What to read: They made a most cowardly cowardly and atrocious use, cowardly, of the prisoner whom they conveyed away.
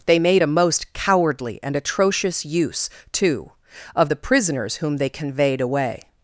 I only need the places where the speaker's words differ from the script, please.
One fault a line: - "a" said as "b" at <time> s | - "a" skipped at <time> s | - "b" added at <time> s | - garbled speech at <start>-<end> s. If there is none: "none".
- "cowardly" skipped at 1.6 s
- "cowardly" said as "too" at 3.1 s
- "prisoner" said as "prisoners" at 4.2 s